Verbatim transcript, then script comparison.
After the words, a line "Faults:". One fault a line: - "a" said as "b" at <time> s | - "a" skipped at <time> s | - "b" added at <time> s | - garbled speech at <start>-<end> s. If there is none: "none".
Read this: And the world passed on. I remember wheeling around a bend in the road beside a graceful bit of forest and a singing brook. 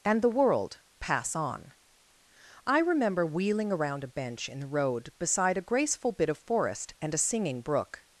And the world pass on. I remember wheeling around a bench in the road beside a graceful bit of forest and a singing brook.
Faults:
- "passed" said as "pass" at 1.0 s
- "bend" said as "bench" at 4.1 s